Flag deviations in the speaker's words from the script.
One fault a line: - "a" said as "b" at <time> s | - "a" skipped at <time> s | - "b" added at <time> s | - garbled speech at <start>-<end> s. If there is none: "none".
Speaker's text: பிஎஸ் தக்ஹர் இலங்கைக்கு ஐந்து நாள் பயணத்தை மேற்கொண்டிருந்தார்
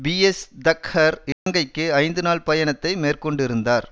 none